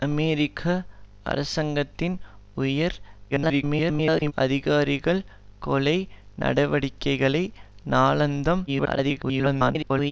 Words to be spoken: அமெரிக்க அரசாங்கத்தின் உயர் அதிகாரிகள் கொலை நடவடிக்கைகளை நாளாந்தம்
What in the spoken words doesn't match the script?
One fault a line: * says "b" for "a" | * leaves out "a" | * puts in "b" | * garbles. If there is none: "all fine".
* garbles
* garbles